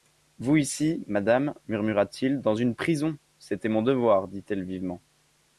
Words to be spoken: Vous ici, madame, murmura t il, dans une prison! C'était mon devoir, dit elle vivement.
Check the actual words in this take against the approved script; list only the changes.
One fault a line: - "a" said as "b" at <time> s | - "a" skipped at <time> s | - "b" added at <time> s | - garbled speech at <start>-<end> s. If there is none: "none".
none